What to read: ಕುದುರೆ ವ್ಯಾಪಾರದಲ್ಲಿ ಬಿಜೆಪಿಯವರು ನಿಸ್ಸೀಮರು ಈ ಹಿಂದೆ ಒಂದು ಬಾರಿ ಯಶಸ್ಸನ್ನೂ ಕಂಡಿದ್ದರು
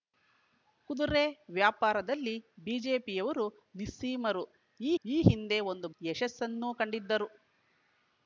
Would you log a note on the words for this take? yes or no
yes